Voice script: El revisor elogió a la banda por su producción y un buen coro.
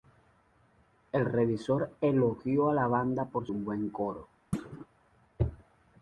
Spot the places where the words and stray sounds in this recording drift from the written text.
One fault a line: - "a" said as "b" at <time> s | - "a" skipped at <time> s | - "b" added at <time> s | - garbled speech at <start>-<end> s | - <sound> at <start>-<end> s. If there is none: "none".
- "su producción y" skipped at 3.5 s
- thud at 4.5-4.9 s